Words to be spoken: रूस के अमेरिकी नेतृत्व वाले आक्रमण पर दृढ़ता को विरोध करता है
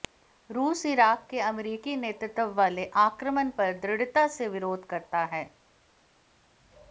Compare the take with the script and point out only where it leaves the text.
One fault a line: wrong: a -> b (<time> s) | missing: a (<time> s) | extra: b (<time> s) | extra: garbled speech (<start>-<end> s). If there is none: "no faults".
extra: इराक़ (0.8 s)
wrong: को -> से (4.3 s)